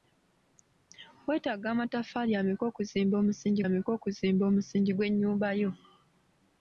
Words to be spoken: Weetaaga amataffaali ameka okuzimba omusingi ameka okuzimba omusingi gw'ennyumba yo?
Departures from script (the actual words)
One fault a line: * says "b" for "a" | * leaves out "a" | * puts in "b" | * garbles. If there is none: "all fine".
all fine